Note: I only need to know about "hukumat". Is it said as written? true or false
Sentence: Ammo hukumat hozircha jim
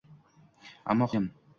false